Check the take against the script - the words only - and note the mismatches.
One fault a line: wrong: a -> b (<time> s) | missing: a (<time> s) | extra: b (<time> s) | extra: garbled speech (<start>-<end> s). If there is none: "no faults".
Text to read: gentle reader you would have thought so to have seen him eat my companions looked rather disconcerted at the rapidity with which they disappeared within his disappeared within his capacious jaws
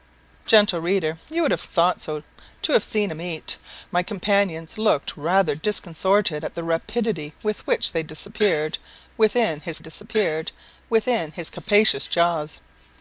no faults